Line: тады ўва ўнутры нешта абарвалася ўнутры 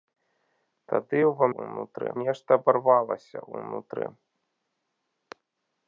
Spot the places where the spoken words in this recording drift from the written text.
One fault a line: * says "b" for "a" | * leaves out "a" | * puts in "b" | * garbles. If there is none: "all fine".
all fine